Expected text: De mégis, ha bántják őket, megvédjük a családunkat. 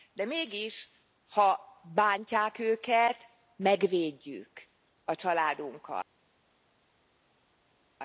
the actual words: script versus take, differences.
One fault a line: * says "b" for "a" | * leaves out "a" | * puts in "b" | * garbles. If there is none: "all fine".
all fine